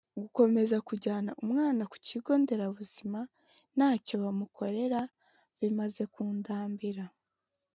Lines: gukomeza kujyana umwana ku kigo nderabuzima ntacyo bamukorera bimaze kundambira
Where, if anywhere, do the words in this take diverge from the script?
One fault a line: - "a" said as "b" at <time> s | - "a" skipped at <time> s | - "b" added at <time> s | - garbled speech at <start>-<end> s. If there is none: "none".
none